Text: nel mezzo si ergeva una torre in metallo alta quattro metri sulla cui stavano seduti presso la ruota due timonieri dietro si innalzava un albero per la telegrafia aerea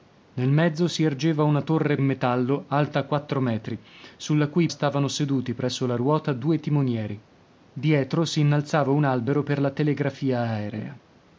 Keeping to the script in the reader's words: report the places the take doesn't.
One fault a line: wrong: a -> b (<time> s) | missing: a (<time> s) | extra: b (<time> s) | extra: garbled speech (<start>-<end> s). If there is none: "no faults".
no faults